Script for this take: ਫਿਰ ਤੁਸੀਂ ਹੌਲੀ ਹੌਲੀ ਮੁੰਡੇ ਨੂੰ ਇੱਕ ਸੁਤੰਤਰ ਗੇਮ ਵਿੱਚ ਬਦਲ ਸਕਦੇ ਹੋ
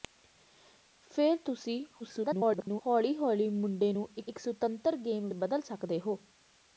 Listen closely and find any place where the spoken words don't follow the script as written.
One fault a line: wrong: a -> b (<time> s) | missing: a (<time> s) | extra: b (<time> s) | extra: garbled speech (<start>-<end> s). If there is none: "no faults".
extra: garbled speech (2.0-2.8 s)
extra: ਇੱਕ (4.3 s)
missing: ਵਿੱਚ (5.3 s)